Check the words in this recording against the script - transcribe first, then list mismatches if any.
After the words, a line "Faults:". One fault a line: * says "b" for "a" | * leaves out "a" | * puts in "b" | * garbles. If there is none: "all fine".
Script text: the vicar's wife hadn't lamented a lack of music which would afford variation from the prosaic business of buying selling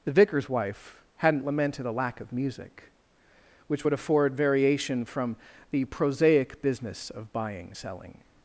the vicar's wife hadn't lamented a lack of music which would afford variation from the prosaic business of buying selling
Faults:
all fine